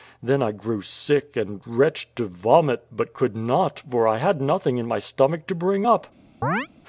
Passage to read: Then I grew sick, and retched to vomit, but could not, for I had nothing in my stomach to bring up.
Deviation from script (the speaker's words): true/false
false